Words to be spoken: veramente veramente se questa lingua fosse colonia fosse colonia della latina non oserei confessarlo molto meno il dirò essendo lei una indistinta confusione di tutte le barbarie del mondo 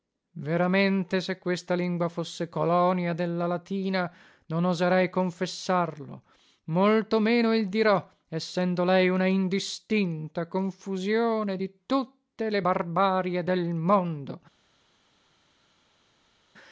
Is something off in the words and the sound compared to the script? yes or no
yes